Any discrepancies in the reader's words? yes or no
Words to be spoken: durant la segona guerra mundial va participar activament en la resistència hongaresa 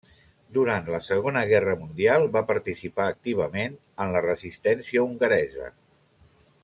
no